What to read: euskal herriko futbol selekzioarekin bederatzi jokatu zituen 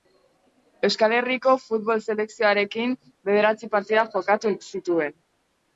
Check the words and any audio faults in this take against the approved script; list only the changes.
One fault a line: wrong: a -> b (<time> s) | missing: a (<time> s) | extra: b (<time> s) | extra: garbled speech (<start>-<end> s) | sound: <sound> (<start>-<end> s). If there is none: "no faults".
extra: partida (3.8 s)